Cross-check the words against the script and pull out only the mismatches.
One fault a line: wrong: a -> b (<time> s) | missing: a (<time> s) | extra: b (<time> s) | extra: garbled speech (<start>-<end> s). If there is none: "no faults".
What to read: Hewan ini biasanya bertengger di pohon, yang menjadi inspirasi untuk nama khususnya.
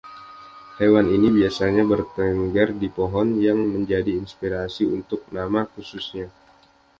no faults